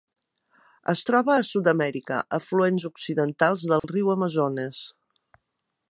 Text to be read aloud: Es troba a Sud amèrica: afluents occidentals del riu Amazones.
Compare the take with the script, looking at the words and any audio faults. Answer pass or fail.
fail